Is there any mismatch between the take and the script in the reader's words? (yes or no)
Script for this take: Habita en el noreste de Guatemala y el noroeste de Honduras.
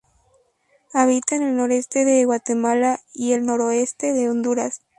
no